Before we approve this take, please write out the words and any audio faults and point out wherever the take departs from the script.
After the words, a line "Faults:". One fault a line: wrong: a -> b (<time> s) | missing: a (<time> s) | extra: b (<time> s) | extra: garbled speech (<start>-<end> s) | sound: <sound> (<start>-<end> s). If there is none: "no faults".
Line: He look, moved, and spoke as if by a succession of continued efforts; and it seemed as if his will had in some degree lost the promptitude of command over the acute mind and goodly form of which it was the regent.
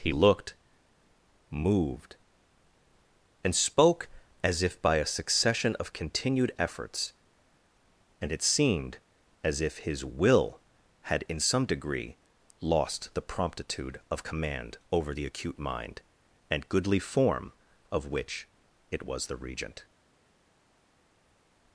He looked, moved, and spoke as if by a succession of continued efforts; and it seemed as if his will had in some degree lost the promptitude of command over the acute mind and goodly form of which it was the regent.
Faults:
wrong: look -> looked (0.1 s)